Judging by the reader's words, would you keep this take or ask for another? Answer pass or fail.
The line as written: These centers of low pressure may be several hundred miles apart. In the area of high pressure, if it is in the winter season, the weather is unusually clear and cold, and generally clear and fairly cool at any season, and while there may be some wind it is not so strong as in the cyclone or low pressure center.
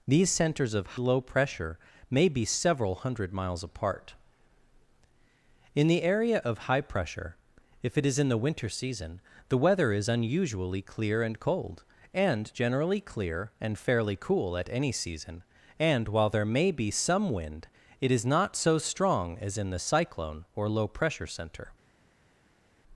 pass